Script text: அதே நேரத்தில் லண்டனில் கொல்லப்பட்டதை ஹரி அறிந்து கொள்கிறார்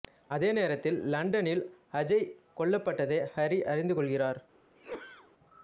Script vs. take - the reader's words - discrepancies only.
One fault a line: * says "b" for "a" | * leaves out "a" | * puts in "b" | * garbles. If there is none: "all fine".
* puts in "அஜய்"